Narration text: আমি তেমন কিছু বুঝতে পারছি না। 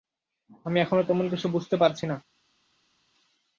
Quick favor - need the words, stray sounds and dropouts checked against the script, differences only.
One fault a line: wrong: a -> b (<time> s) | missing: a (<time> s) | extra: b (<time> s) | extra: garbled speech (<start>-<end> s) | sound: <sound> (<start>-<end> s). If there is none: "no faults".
extra: এখনো (0.8 s)